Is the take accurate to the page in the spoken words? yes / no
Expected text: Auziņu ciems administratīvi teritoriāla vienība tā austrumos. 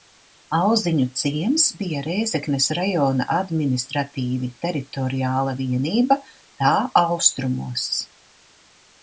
no